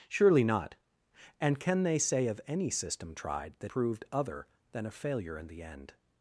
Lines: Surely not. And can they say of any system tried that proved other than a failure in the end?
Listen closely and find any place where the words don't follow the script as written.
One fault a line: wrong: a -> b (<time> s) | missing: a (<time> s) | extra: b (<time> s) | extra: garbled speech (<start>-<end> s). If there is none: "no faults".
no faults